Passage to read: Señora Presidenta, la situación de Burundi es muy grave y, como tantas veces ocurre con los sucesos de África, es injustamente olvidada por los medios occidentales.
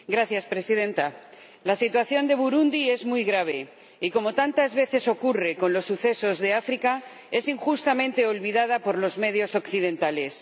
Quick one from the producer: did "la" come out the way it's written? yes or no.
yes